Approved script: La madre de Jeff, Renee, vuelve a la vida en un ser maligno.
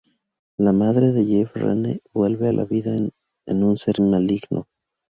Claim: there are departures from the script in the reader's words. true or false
false